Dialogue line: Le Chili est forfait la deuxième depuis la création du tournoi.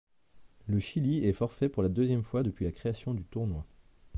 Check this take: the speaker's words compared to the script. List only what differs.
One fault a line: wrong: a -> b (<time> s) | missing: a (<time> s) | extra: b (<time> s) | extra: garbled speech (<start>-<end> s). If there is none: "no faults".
extra: pour (1.7 s)
extra: fois (2.2 s)